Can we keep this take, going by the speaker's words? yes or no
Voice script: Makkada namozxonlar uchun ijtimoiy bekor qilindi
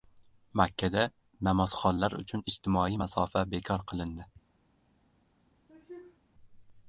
no